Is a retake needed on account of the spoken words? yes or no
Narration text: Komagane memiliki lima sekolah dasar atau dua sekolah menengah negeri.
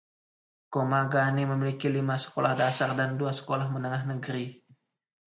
yes